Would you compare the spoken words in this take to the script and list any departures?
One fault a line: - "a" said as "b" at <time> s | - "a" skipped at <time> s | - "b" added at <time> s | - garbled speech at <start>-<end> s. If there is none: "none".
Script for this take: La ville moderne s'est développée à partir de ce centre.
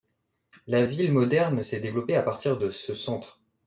none